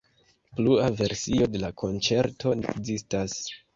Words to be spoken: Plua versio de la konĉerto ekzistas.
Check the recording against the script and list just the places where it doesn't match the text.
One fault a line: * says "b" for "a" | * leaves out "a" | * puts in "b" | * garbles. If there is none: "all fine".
all fine